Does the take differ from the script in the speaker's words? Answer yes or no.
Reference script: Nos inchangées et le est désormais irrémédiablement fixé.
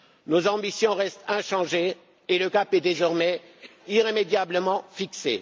yes